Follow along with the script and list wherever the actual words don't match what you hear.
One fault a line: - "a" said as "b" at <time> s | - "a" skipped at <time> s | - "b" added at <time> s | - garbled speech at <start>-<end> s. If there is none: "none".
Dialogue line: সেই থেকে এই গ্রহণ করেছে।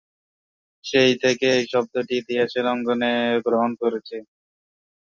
- "শব্দটি ইতিহাসের অঙ্গনে" added at 1.7 s